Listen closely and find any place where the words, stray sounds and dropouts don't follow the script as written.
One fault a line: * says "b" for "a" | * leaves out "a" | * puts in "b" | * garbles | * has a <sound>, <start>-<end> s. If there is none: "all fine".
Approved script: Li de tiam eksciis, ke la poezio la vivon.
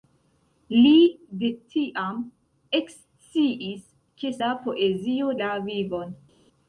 all fine